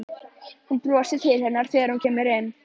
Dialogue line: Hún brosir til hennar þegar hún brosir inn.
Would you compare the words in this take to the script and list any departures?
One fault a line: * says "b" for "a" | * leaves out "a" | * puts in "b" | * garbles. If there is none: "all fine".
* says "kemur" for "brosir"